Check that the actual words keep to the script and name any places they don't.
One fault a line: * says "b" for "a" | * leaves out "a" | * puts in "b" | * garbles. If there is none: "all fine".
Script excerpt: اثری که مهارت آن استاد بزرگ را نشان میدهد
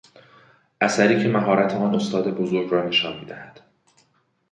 all fine